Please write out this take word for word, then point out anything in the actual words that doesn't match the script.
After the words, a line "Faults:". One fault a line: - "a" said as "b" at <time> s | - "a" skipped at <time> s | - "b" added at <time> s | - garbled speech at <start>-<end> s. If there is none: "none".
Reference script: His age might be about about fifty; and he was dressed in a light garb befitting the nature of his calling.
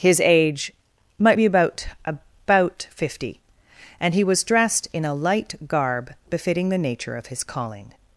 His age might be about about fifty; and he was dressed in a light garb befitting the nature of his calling.
Faults:
none